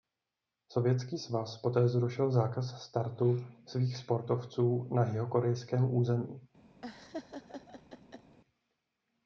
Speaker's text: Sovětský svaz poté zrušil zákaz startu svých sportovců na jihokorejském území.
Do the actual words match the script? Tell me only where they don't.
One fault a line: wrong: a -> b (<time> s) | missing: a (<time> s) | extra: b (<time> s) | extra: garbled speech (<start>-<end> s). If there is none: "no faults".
no faults